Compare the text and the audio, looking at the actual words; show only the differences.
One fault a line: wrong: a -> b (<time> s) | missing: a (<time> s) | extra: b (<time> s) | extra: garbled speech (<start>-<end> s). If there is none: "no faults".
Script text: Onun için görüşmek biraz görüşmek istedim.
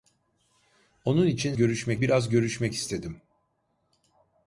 no faults